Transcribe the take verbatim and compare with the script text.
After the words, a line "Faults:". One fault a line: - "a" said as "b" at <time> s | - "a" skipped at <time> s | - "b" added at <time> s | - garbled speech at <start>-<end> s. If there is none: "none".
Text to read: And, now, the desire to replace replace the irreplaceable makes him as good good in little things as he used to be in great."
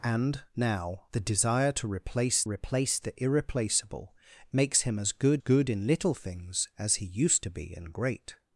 And, now, the desire to replace replace the irreplaceable makes him as good good in little things as he used to be in great."
Faults:
none